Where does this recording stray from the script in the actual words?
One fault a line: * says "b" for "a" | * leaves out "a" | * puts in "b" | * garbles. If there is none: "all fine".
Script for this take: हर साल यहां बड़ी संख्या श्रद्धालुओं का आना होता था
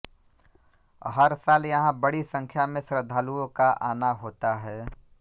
* puts in "में"
* says "है" for "था"